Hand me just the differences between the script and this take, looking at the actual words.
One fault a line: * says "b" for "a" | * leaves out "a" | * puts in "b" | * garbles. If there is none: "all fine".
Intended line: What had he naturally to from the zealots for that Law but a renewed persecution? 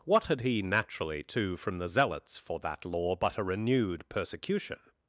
all fine